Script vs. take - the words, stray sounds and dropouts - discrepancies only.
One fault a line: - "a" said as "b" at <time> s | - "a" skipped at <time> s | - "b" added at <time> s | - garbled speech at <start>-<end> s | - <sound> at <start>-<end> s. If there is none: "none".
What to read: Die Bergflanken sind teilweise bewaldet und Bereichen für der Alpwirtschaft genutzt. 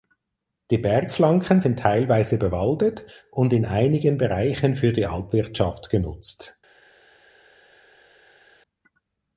- "in einigen" added at 3.5 s
- "der" said as "die" at 4.9 s